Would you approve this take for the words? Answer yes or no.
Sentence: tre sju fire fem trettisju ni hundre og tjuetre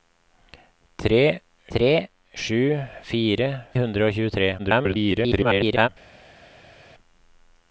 no